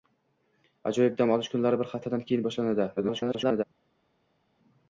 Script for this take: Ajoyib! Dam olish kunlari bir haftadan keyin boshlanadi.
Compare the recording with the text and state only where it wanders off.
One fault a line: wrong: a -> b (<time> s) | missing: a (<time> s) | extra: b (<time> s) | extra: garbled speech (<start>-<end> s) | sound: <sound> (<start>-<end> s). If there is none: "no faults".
extra: garbled speech (3.0-3.6 s)